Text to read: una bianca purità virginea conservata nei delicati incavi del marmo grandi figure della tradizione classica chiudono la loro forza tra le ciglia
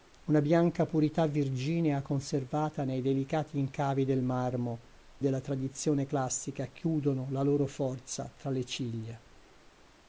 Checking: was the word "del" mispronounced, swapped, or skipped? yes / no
no